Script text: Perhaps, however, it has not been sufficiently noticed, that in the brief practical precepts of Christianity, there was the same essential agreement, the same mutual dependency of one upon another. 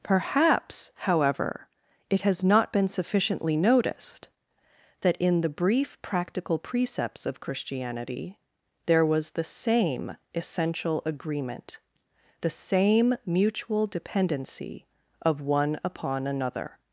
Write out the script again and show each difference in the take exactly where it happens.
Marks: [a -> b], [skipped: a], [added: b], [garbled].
Perhaps, however, it has not been sufficiently noticed, that in the brief practical precepts of Christianity, there was the same essential agreement, the same mutual dependency of one upon another.